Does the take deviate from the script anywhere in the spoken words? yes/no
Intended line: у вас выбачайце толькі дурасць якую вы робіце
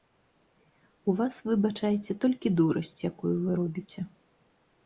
no